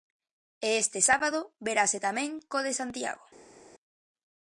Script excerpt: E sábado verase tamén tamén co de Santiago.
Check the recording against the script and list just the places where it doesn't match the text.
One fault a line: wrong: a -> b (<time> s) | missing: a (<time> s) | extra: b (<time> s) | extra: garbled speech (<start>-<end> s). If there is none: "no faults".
extra: este (0.8 s)
missing: tamén (2.3 s)